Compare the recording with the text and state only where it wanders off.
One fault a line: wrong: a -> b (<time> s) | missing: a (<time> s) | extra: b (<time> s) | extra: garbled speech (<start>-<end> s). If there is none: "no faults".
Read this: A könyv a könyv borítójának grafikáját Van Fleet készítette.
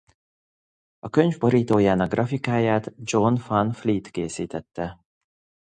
missing: a könyv (1.4 s)
extra: John (3.0 s)